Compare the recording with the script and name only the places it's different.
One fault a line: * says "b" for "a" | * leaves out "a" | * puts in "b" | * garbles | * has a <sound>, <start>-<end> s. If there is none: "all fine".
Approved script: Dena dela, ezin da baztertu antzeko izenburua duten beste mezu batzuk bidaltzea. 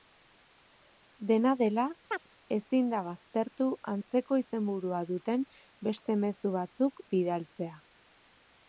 * has a chirp, 2.1-2.3 s